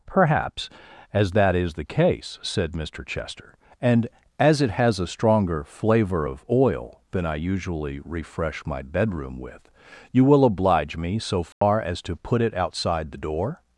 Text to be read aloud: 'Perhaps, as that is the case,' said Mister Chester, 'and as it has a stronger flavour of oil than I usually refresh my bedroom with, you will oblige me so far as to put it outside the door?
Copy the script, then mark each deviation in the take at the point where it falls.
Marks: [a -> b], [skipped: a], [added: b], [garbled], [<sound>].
'Perhaps, as that is the case,' said Mister Chester, 'and as it has a stronger flavour of oil than I usually refresh my bedroom with, you will oblige me so far [dropout] as to put it outside the door?